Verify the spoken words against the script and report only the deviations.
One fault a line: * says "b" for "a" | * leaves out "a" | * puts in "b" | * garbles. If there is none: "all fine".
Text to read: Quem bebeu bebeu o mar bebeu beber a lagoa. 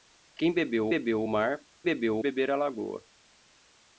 all fine